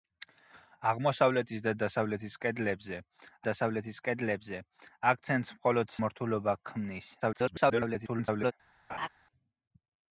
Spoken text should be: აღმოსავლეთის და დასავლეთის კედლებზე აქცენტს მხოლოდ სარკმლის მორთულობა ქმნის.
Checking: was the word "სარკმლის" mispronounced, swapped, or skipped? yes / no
yes